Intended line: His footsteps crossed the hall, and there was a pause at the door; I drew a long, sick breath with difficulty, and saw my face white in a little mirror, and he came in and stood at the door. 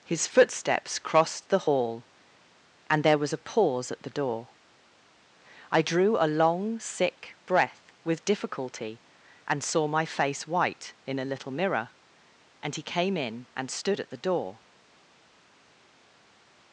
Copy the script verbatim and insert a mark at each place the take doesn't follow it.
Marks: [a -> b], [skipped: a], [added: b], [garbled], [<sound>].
His footsteps crossed the hall, and there was a pause at the door; I drew a long, sick breath with difficulty, and saw my face white in a little mirror, and he came in and stood at the door.